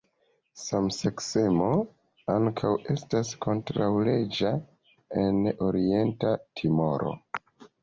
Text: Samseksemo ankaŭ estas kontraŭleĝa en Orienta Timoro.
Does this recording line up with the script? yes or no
yes